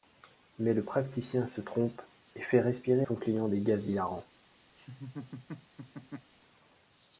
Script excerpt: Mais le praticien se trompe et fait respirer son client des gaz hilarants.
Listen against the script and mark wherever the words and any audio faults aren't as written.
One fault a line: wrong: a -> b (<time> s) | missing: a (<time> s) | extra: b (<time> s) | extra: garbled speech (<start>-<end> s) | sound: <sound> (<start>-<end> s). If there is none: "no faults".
sound: laugh (4.8-6.3 s)